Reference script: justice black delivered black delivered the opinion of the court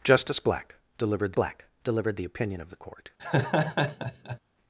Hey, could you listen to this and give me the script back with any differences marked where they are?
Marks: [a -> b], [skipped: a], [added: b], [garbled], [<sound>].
justice black delivered black delivered the opinion of the court [laugh]